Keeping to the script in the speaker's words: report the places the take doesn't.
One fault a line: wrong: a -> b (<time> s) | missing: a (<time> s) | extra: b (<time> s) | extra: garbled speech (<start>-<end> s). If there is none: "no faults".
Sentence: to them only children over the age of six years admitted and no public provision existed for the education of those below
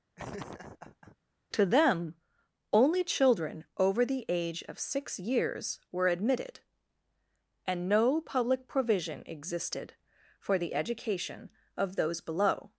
extra: were (5.9 s)